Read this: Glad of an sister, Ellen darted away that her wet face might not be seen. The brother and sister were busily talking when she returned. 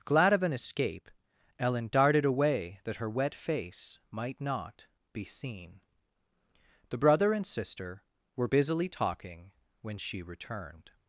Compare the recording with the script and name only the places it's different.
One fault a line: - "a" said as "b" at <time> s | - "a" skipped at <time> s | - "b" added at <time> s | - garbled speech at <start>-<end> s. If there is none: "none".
- "sister" said as "escape" at 0.5 s